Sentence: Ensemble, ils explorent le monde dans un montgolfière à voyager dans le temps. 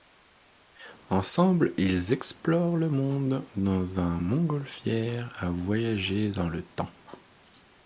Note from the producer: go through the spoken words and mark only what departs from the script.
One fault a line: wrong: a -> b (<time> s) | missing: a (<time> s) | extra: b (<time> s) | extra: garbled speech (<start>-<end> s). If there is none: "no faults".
no faults